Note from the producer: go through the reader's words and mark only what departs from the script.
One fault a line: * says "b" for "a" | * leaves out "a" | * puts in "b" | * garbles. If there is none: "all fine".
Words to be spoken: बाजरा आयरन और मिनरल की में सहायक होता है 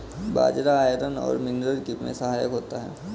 all fine